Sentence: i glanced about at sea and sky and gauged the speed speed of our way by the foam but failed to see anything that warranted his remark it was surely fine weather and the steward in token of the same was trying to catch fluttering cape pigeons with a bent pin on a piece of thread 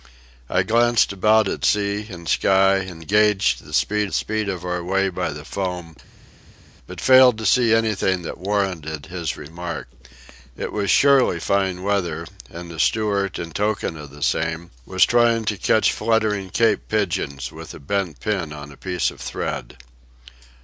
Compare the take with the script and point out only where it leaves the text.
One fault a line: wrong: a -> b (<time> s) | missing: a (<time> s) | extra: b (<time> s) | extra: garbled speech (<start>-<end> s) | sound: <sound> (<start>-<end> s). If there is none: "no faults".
no faults